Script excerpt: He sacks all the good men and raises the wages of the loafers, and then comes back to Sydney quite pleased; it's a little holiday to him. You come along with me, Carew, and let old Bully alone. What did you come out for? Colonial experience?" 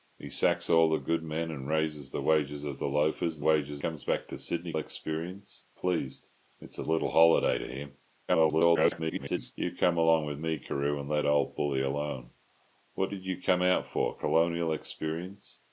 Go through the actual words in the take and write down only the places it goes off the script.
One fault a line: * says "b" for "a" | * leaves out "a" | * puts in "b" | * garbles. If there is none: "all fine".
* says "wages" for "then"
* says "experience" for "quite"
* garbles